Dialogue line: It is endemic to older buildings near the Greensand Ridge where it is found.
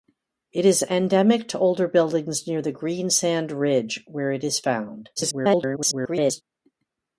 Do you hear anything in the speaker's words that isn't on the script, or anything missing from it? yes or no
yes